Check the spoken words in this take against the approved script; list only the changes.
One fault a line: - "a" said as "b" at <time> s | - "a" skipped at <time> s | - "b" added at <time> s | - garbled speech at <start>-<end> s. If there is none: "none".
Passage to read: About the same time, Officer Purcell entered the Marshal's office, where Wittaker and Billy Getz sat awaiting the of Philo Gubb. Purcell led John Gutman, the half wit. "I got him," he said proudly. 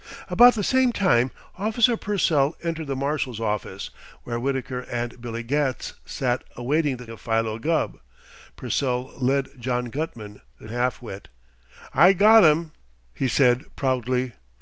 none